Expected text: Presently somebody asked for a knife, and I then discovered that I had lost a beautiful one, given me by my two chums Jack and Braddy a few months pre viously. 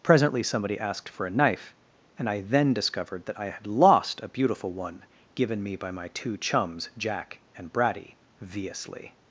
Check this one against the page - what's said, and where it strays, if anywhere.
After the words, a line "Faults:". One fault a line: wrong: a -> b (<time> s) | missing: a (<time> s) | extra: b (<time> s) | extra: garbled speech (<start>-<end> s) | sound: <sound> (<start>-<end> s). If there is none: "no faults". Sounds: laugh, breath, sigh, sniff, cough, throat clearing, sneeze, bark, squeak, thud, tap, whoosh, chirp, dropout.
Presently somebody asked for a knife, and I then discovered that I had lost a beautiful one, given me by my two chums Jack and Braddy viously.
Faults:
missing: a few months pre (8.2 s)